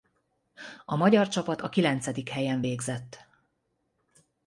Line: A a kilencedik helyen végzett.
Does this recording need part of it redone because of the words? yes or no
yes